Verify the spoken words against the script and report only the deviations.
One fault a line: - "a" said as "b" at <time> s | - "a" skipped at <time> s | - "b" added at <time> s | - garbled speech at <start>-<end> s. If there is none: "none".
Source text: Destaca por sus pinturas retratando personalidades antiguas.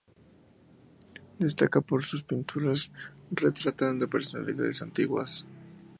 none